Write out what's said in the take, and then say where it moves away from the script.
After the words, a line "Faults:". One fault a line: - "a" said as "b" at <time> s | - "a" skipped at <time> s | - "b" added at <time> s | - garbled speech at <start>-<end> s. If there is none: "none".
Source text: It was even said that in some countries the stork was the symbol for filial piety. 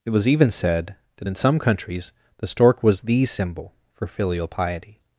It was even said that in some countries the stork was the symbol for filial piety.
Faults:
none